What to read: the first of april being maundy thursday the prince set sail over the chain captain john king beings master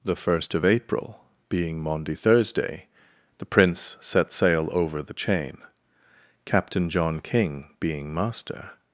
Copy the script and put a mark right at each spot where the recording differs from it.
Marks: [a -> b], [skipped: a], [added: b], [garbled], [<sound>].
the first of april being maundy thursday the prince set sail over the chain captain john king [beings -> being] master